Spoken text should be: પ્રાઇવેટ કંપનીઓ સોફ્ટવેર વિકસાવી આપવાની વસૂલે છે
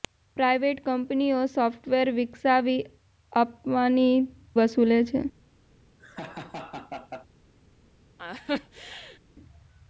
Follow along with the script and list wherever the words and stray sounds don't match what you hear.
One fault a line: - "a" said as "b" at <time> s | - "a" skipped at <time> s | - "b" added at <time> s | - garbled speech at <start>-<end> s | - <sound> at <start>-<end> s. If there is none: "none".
- laugh at 6.0-7.3 s
- laugh at 8.2-9.2 s